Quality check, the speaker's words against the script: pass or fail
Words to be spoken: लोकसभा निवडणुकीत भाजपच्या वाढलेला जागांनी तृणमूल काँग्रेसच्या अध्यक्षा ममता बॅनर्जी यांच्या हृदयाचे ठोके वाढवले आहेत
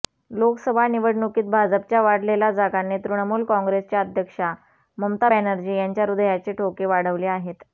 pass